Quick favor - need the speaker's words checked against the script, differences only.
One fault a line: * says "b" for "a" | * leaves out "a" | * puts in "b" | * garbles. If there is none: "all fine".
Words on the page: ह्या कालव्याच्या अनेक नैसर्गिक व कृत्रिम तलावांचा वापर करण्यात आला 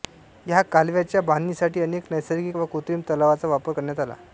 * puts in "बांधणीसाठी"